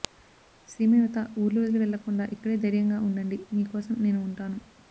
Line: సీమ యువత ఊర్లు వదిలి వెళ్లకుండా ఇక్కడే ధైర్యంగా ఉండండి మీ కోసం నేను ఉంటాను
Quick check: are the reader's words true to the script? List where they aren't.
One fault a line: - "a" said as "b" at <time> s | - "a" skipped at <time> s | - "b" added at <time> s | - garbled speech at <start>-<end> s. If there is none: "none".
none